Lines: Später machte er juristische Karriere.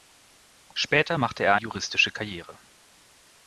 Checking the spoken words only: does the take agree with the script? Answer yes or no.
yes